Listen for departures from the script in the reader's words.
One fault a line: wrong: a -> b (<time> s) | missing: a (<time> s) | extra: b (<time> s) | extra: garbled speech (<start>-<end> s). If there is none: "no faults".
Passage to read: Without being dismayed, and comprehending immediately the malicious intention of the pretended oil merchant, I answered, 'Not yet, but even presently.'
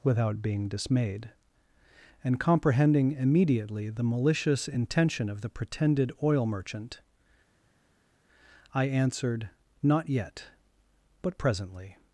missing: even (11.4 s)